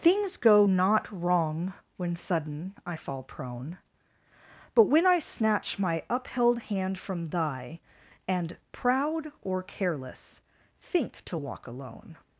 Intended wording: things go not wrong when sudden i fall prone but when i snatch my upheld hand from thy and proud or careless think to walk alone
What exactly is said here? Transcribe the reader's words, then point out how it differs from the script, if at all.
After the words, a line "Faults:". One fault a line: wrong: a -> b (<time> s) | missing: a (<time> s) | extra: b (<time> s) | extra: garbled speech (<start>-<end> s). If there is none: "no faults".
things go not wrong when sudden i fall prone but when i snatch my upheld hand from thy and proud or careless think to walk alone
Faults:
no faults